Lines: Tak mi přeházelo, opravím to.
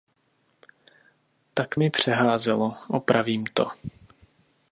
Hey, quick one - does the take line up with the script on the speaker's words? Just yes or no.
yes